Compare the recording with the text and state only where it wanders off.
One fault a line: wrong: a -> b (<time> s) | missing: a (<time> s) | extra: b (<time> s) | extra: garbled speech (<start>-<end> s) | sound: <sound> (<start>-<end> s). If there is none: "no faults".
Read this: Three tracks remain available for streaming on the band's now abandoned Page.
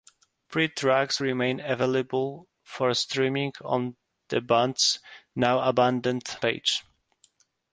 no faults